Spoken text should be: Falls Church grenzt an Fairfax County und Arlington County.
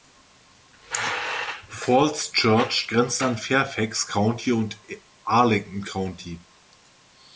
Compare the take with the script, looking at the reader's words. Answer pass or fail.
pass